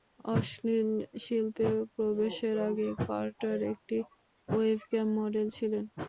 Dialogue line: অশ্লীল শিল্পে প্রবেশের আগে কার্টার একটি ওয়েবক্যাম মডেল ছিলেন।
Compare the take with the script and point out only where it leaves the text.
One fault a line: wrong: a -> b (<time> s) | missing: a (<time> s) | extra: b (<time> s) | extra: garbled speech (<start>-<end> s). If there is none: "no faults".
no faults